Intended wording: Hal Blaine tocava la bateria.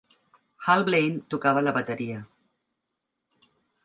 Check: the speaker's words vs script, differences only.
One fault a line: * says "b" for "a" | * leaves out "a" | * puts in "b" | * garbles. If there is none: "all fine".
all fine